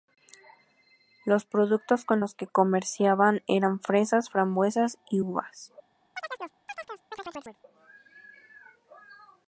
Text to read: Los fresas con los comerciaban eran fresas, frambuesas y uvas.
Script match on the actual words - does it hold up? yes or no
no